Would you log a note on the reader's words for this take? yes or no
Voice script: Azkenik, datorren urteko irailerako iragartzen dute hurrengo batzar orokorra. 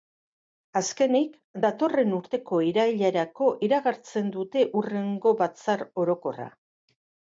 no